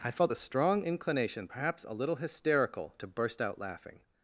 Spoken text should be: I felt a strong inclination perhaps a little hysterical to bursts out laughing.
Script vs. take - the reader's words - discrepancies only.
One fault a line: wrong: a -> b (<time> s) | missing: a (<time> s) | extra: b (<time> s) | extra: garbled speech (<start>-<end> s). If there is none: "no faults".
wrong: bursts -> burst (3.1 s)